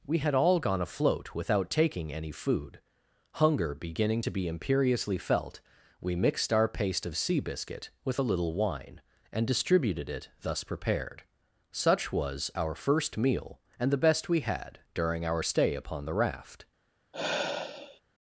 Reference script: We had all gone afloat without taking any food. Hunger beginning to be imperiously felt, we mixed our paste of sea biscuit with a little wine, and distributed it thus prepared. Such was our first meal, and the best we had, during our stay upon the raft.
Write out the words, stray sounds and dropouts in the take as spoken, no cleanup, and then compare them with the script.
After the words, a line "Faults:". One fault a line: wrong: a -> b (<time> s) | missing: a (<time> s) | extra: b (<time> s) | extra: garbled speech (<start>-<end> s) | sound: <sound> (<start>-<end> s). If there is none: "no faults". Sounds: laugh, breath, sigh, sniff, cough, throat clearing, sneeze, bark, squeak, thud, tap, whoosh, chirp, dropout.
We had all gone afloat without taking any food. Hunger beginning to be imperiously felt, we mixed our paste of sea biscuit with a little wine, and distributed it thus prepared. Such was our first meal, and the best we had, during our stay upon the raft.
Faults:
sound: sigh (17.1-18.0 s)